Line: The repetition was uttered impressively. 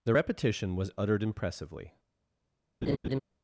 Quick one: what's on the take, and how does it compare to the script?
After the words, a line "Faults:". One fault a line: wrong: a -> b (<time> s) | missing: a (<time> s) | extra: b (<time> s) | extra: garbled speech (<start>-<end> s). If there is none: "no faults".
The repetition was uttered impressively.
Faults:
no faults